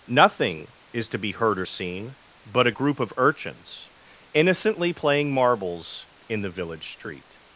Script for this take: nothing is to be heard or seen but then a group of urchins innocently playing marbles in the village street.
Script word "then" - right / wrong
wrong